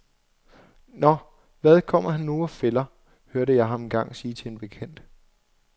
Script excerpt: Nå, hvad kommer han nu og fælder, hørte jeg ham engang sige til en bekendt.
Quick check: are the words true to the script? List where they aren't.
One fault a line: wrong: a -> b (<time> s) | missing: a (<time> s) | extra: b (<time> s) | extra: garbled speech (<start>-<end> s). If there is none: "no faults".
no faults